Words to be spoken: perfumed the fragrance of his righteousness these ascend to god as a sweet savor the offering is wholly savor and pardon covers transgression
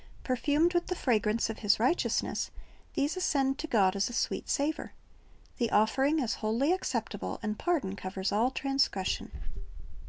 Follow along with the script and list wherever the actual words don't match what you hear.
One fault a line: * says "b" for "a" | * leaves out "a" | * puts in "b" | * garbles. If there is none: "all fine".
* puts in "with"
* says "acceptable" for "savor"
* puts in "all"